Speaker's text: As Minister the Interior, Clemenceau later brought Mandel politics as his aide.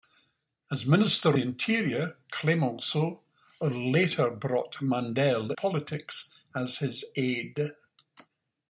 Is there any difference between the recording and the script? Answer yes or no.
no